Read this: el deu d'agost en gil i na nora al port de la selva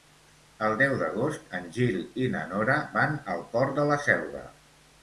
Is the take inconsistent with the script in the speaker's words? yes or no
yes